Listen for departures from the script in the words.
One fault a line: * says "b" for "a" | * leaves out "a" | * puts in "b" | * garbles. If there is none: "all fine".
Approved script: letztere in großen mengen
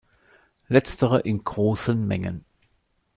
all fine